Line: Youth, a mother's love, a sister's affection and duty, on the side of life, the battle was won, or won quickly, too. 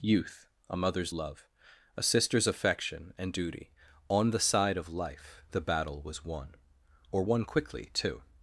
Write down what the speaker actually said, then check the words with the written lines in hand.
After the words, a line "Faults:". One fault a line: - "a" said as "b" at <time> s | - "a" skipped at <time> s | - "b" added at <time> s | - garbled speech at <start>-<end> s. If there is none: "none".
Youth, a mother's love, a sister's affection and duty, on the side of life, the battle was won, or won quickly, too.
Faults:
none